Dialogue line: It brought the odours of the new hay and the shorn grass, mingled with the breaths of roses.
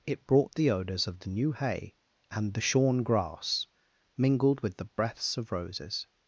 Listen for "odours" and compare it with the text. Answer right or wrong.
right